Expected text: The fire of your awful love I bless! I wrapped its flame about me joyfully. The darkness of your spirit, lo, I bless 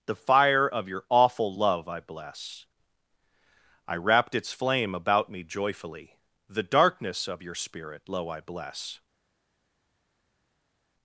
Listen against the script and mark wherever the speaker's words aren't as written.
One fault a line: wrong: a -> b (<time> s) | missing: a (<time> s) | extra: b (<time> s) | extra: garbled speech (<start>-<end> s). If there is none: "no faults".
no faults